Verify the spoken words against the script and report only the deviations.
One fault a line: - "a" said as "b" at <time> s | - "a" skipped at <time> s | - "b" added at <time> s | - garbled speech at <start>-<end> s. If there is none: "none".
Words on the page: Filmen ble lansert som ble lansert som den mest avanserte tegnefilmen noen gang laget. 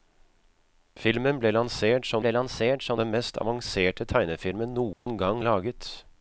none